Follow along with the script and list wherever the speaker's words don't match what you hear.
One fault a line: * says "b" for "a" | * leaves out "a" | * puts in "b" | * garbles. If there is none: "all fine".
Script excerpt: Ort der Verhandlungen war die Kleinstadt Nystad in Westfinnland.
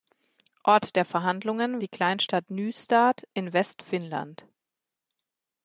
* leaves out "war"